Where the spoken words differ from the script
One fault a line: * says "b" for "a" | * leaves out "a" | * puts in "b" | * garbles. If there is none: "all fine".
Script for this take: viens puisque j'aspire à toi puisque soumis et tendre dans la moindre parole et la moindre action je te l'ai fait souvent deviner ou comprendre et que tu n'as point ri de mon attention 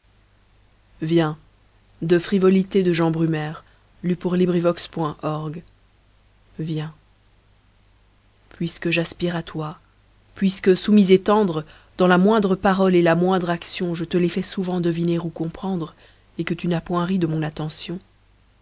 all fine